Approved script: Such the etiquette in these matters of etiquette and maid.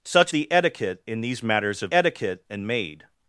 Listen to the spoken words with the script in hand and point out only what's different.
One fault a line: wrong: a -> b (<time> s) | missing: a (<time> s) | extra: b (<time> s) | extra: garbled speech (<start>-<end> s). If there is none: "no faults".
no faults